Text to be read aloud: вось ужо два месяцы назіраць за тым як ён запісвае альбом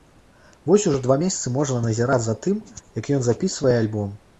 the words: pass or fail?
fail